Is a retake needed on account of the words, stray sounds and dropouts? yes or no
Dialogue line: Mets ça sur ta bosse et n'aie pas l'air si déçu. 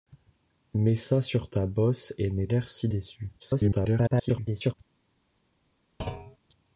yes